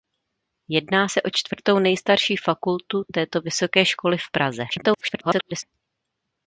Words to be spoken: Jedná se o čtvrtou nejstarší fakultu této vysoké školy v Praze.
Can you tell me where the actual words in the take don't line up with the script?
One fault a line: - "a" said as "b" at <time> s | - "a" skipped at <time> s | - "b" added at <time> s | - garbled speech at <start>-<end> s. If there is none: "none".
- garbled speech at 4.7-5.6 s